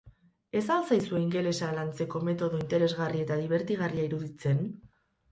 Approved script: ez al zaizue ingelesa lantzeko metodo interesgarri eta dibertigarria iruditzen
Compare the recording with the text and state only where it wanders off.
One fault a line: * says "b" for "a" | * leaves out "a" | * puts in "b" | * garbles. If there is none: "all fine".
all fine